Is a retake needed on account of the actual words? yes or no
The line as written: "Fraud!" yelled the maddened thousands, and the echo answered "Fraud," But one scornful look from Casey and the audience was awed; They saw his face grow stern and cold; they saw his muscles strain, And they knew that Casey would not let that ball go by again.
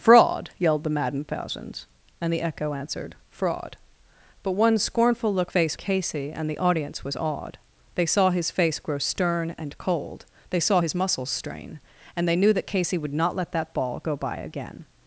yes